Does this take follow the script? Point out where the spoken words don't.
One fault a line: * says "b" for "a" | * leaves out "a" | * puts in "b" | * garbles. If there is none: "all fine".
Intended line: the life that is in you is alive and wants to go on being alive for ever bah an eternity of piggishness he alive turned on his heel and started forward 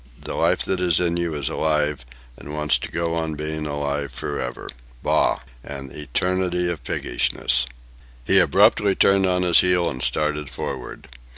* says "abruptly" for "alive"